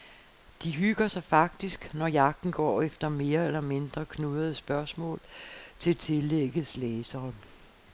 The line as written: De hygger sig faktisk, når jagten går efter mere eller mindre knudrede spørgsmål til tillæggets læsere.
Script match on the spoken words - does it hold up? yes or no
yes